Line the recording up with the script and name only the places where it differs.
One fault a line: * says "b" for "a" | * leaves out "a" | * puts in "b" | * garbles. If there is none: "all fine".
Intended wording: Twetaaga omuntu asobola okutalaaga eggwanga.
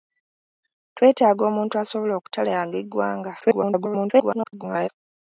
* garbles